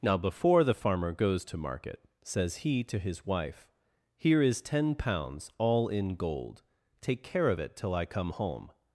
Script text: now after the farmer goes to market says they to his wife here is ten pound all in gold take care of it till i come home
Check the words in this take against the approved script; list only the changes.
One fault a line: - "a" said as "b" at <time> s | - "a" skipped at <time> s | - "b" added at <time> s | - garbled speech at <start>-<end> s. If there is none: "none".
- "after" said as "before" at 0.2 s
- "they" said as "he" at 2.6 s
- "pound" said as "pounds" at 4.9 s